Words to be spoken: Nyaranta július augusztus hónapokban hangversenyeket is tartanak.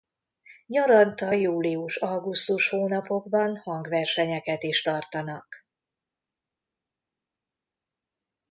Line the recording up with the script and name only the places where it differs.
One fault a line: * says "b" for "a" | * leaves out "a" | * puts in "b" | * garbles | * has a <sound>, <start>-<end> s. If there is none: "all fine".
all fine